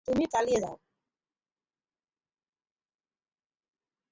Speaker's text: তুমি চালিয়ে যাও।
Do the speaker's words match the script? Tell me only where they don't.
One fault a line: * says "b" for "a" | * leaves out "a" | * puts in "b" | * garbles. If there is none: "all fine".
all fine